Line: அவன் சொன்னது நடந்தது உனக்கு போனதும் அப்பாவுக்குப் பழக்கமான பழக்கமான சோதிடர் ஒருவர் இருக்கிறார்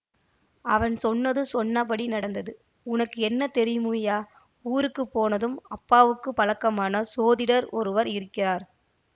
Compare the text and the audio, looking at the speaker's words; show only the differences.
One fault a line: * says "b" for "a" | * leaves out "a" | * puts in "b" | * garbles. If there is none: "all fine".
* puts in "சொன்னபடி"
* puts in "என்ன தெரியுமய்யா ஊருக்கு"
* leaves out "பழக்கமான"